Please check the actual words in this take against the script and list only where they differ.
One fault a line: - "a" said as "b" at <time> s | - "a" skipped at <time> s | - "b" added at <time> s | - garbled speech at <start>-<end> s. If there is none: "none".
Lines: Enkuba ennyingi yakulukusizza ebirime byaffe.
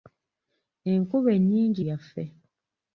- "yakulukusizza ebirime" skipped at 1.8 s